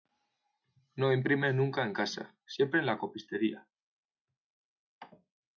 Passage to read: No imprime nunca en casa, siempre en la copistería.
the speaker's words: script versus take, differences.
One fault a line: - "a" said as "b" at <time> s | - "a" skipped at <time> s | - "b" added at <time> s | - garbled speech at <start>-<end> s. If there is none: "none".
none